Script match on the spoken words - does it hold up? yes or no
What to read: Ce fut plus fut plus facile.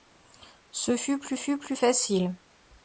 yes